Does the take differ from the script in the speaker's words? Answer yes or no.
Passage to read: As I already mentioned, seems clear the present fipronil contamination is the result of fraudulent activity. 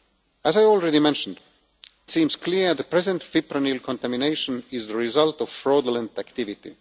no